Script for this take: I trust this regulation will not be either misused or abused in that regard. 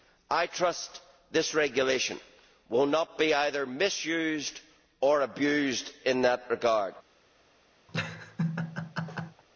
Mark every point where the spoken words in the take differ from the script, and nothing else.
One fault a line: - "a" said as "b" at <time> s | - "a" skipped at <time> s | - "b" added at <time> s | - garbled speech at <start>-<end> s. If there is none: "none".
none